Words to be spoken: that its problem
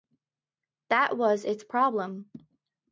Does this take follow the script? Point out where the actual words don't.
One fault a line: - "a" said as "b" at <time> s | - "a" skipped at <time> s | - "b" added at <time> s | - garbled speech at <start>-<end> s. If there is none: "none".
- "was" added at 1.1 s